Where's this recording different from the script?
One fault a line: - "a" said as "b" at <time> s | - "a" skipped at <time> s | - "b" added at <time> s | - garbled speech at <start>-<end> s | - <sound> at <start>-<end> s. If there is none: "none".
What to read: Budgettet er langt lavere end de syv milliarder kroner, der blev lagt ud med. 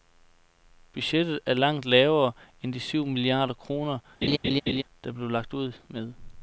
- laugh at 4.2-4.8 s